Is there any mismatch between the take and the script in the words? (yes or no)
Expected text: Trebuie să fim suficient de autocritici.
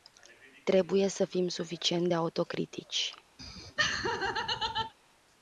no